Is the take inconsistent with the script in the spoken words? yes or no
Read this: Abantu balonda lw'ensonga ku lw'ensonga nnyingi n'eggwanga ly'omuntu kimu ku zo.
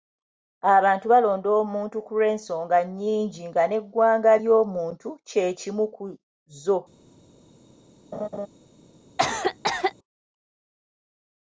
yes